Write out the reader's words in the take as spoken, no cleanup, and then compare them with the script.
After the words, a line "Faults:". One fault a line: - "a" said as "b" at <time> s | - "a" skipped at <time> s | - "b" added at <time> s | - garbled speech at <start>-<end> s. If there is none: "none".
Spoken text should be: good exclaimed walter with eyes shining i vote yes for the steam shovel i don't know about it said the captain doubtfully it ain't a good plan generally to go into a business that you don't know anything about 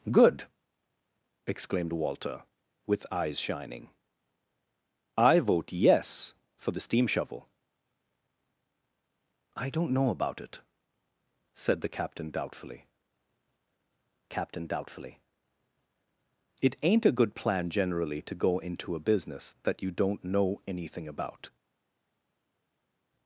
good exclaimed walter with eyes shining i vote yes for the steam shovel i don't know about it said the captain doubtfully captain doubtfully it ain't a good plan generally to go into a business that you don't know anything about
Faults:
- "captain doubtfully" added at 14.3 s